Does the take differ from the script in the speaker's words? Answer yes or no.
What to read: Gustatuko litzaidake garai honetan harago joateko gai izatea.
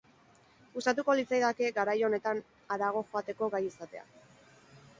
no